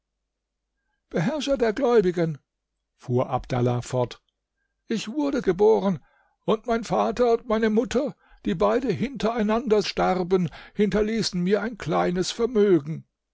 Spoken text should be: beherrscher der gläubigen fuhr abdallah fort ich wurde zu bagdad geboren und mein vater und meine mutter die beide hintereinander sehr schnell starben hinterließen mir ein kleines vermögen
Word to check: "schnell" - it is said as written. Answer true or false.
false